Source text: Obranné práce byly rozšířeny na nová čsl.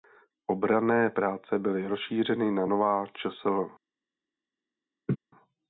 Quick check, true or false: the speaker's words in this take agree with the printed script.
true